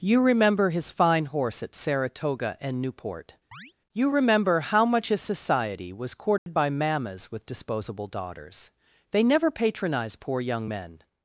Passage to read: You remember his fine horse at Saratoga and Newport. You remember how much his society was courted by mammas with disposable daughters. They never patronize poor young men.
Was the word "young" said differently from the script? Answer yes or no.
no